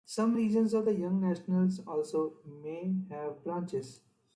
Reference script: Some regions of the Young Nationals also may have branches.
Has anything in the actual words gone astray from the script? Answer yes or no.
no